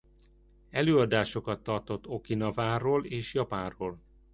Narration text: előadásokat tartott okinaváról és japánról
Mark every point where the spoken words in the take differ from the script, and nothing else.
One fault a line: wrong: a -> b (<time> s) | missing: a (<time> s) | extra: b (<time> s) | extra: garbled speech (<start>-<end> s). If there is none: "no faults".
no faults